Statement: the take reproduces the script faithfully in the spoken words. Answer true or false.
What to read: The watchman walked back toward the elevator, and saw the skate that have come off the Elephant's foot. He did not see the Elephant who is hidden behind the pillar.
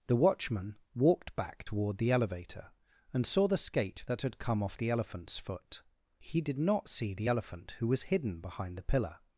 false